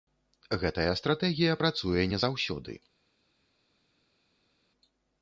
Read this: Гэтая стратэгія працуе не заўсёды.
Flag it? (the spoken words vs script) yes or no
no